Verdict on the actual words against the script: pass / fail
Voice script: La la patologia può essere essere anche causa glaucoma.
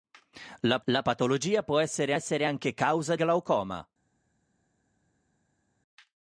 pass